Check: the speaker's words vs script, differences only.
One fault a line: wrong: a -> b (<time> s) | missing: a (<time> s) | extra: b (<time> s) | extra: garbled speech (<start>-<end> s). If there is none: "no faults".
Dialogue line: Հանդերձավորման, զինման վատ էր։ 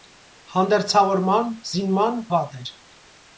no faults